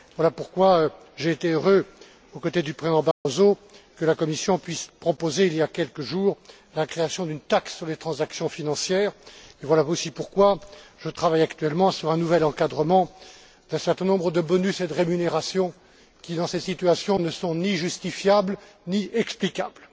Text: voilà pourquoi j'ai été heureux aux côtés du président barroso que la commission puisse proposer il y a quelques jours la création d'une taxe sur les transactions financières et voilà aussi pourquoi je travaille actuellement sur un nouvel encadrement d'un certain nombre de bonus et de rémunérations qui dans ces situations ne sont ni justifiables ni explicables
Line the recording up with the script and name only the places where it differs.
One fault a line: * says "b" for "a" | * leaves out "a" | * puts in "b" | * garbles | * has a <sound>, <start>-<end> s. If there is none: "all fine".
* has a dropout, 3.1-3.3 s